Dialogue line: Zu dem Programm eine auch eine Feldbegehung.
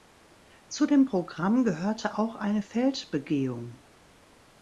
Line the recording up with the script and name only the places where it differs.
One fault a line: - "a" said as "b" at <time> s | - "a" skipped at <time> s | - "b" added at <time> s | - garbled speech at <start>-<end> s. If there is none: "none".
- "eine" said as "gehörte" at 1.6 s